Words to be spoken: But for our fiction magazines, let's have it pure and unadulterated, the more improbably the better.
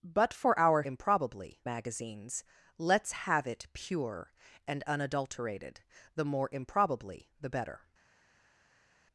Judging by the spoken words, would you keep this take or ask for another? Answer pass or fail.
fail